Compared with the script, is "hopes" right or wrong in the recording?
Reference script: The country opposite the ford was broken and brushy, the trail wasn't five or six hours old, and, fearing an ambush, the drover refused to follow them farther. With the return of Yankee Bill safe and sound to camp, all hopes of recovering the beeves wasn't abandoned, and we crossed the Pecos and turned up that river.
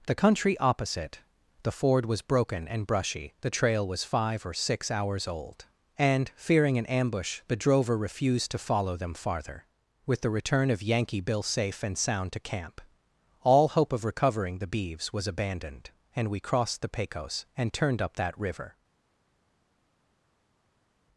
wrong